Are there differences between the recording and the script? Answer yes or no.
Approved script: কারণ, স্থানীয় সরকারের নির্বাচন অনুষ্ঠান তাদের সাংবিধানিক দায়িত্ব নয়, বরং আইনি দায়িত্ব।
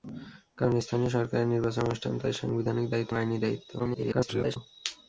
yes